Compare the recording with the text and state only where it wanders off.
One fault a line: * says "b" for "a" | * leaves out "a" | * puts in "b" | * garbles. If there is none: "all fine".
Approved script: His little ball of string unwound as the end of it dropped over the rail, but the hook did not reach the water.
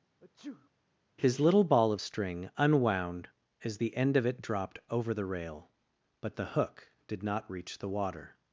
all fine